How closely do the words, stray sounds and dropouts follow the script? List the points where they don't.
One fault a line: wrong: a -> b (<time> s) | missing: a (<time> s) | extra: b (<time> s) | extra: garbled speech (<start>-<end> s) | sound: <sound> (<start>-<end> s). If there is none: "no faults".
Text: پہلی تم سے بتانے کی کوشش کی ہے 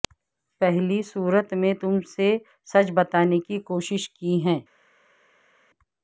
extra: صورت میں (1.0 s)
extra: سچ (2.7 s)